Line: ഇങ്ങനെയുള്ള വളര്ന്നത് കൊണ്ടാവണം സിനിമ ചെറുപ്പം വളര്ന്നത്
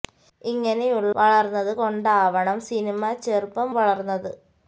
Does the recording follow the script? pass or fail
pass